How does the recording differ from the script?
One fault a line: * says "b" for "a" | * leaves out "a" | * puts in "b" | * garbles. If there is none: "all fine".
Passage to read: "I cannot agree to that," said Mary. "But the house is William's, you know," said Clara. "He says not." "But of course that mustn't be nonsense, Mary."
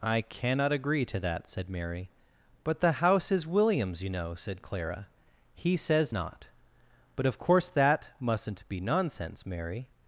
all fine